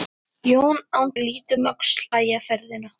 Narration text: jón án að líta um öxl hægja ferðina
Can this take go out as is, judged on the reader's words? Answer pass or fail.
pass